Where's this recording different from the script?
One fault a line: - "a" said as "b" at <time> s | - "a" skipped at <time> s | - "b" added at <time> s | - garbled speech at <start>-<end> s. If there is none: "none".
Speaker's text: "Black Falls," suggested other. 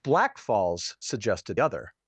none